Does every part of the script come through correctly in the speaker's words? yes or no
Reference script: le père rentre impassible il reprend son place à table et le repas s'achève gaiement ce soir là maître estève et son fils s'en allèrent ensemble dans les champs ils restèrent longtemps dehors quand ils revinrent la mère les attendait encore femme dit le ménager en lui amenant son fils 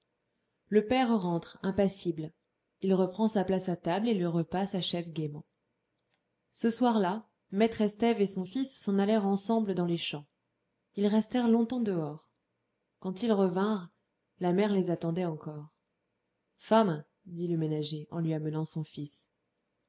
no